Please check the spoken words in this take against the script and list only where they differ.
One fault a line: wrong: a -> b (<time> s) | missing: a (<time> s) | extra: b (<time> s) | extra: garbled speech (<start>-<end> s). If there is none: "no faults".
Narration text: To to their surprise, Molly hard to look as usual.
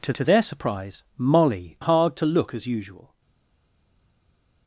no faults